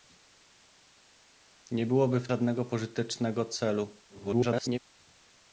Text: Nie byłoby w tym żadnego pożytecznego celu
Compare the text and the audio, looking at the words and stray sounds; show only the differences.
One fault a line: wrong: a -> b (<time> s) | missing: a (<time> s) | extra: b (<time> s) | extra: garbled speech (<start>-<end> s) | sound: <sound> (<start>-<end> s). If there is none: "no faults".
missing: tym (2.3 s)
extra: garbled speech (4.1-4.8 s)